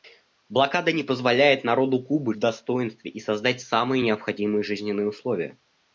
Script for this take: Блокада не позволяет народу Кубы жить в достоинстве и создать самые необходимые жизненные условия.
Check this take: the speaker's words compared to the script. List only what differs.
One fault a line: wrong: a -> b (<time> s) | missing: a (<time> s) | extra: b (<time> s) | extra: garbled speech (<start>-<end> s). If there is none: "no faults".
missing: жить (2.4 s)